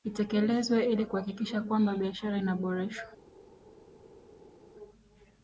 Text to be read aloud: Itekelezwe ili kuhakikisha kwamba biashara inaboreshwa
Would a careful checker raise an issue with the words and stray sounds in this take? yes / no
no